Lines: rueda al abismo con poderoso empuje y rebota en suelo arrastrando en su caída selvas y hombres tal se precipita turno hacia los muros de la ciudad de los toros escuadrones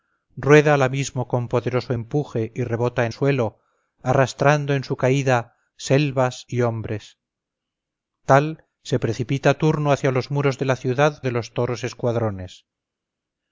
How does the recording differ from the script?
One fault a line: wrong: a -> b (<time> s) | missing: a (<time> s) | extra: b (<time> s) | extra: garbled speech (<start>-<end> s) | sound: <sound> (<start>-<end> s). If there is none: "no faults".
no faults